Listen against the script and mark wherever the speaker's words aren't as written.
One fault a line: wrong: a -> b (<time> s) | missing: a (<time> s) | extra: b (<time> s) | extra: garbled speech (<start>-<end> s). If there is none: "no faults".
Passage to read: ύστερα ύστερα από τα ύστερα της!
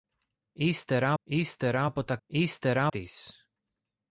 no faults